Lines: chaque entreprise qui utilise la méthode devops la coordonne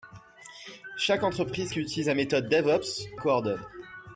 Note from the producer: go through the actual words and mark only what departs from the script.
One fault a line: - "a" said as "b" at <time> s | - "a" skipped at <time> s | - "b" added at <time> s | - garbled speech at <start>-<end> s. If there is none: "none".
- "la" skipped at 3.1 s